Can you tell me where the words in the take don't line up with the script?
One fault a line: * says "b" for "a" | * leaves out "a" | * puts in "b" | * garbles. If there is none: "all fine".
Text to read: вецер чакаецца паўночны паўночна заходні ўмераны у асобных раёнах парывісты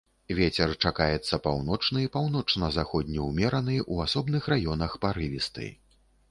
all fine